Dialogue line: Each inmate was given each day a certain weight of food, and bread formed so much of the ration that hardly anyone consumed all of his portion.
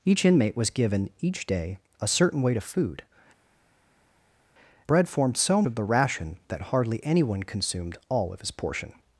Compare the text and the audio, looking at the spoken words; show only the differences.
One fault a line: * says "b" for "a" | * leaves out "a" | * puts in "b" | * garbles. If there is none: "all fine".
* leaves out "and"
* leaves out "much"